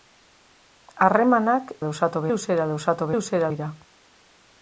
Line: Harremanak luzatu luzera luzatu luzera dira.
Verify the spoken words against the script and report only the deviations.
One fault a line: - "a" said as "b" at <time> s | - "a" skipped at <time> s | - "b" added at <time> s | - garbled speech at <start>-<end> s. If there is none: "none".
none